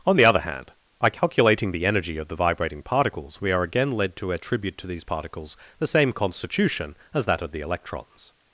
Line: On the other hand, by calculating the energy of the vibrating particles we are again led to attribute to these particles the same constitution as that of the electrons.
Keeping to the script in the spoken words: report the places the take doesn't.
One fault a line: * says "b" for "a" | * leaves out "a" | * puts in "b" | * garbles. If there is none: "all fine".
all fine